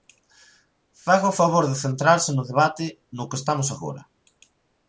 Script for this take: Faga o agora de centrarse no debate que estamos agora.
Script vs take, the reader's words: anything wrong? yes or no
yes